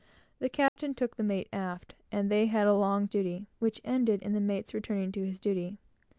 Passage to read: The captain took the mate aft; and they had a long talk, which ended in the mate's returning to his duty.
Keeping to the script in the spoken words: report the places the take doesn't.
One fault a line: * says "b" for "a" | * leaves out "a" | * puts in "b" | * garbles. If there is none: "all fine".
* says "duty" for "talk"